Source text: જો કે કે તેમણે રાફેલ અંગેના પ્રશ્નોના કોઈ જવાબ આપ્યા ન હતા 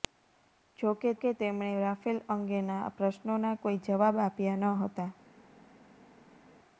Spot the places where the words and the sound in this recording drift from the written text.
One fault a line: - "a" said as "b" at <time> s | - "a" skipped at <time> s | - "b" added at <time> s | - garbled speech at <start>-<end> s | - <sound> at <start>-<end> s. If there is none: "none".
none